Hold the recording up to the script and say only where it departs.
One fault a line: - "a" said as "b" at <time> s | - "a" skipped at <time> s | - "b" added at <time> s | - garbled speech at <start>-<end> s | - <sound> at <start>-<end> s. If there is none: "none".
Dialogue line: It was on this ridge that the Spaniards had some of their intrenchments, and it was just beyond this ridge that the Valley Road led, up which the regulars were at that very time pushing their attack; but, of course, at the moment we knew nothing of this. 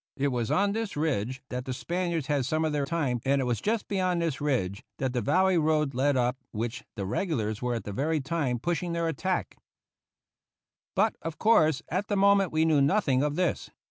- "intrenchments" said as "time" at 2.8 s